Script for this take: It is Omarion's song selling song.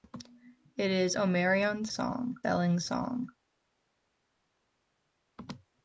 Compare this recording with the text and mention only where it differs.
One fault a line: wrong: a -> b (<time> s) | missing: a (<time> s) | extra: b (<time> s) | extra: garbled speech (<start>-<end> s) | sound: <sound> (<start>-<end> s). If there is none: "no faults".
no faults